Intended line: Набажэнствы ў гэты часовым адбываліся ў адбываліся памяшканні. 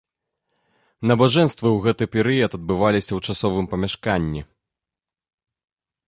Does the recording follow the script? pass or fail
fail